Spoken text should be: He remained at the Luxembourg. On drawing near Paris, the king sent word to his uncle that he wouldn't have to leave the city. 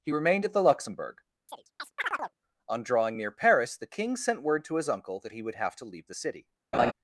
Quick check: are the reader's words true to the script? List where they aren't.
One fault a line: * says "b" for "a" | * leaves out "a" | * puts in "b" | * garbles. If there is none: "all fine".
* says "would" for "wouldn't"